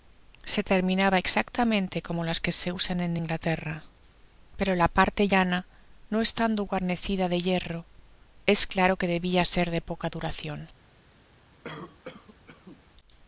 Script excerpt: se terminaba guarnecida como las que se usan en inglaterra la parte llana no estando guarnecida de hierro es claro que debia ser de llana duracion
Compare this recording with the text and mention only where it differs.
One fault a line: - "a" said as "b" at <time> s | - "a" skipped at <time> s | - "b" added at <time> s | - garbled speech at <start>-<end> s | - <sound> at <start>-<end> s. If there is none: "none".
- "guarnecida" said as "exactamente" at 1.2 s
- "pero" added at 4.5 s
- "llana" said as "poca" at 9.8 s
- cough at 11.6-12.8 s